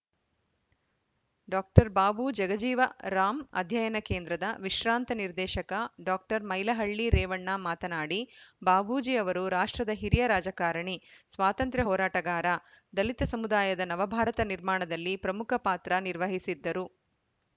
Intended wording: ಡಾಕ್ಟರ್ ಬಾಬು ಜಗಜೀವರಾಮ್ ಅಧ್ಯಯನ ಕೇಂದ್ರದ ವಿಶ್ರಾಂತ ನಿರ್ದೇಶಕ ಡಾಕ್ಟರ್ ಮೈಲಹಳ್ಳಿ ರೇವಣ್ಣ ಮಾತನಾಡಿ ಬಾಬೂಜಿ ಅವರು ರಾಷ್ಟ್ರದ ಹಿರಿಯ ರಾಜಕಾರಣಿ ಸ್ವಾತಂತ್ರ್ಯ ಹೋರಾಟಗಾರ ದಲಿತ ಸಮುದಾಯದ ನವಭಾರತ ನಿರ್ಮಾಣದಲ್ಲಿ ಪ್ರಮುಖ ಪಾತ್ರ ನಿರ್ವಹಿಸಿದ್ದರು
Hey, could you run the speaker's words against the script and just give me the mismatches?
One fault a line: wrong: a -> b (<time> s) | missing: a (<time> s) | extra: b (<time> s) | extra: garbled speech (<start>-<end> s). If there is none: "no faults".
no faults